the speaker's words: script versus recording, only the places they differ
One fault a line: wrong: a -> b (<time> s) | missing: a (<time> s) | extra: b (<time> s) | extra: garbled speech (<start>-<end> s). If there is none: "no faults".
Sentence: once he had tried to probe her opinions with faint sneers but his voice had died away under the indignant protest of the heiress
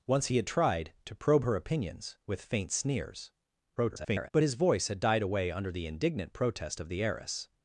extra: garbled speech (3.8-4.3 s)